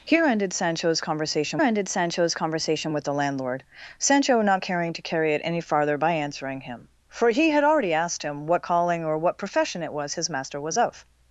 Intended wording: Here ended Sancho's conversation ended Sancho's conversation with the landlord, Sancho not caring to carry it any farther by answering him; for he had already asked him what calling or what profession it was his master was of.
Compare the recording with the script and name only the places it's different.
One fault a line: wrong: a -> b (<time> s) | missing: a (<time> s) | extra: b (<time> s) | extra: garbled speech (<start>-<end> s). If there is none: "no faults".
no faults